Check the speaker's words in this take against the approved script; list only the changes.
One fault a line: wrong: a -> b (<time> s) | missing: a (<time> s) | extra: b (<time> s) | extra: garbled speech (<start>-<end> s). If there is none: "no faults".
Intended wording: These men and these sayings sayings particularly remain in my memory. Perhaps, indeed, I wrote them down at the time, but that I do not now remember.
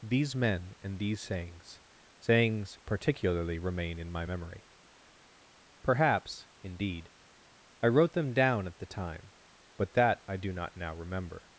no faults